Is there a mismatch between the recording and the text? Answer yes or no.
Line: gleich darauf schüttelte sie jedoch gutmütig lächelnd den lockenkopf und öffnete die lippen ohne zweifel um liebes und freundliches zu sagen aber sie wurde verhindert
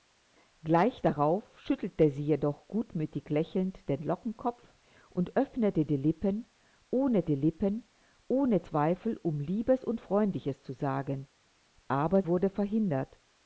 yes